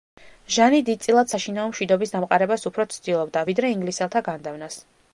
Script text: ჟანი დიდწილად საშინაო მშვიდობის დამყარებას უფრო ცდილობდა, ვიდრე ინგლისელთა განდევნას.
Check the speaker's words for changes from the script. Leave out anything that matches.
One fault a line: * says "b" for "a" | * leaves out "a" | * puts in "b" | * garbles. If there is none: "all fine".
all fine